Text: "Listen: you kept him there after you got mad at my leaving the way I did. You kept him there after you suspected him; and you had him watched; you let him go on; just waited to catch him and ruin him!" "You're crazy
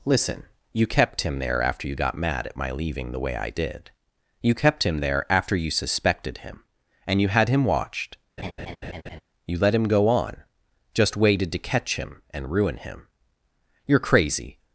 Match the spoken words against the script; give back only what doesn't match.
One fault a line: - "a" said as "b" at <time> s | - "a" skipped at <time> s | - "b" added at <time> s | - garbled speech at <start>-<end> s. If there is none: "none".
none